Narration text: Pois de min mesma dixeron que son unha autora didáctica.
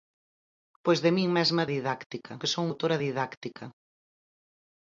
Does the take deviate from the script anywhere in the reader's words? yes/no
yes